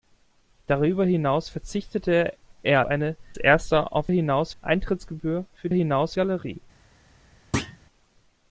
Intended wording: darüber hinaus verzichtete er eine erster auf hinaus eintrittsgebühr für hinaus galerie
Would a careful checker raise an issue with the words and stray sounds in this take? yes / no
yes